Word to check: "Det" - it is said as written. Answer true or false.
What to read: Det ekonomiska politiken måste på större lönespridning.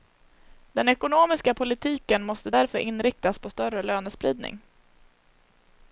false